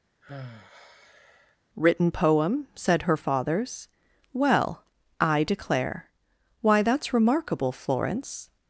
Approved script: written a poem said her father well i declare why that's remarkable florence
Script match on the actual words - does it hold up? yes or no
no